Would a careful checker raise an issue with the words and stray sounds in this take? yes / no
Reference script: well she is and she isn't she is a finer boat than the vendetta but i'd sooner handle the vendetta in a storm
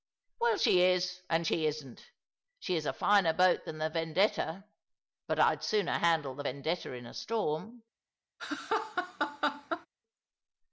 yes